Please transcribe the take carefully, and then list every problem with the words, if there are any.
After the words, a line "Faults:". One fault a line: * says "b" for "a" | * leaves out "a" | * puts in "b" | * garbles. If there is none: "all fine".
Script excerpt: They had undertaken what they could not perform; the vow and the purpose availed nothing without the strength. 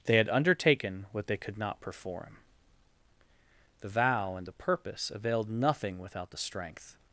They had undertaken what they could not perform; the vow and the purpose availed nothing without the strength.
Faults:
all fine